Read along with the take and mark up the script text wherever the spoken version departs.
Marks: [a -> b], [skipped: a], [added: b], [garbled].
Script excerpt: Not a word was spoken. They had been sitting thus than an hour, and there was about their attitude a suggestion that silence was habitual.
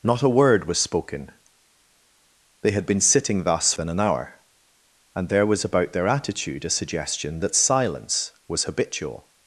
Not a word was spoken. They had been sitting thus than an hour, and there was about their attitude a suggestion that silence was habitual.